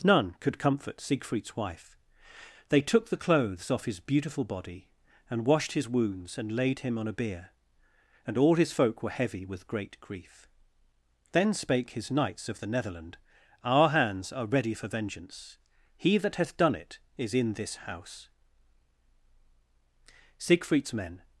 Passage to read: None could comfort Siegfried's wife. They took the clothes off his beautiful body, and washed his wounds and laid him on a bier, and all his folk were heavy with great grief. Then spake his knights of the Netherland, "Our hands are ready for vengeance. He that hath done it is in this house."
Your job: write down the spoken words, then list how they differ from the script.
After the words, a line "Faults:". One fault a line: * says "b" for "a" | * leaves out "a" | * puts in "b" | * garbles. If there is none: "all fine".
None could comfort Siegfried's wife. They took the clothes off his beautiful body, and washed his wounds and laid him on a bier, and all his folk were heavy with great grief. Then spake his knights of the Netherland, "Our hands are ready for vengeance. He that hath done it is in this house." Siegfried's men
Faults:
* puts in "Siegfried's men"